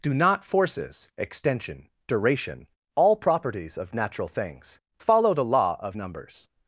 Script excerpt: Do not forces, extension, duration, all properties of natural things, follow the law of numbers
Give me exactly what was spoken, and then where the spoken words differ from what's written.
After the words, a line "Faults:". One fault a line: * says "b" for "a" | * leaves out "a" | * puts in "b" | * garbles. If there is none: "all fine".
Do not forces, extension, duration, all properties of natural things, follow the law of numbers
Faults:
all fine